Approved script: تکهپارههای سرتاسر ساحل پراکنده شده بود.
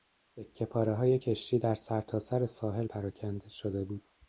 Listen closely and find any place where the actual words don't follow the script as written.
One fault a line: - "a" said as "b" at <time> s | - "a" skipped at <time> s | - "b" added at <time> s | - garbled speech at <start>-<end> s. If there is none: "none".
- "کشتی در" added at 1.2 s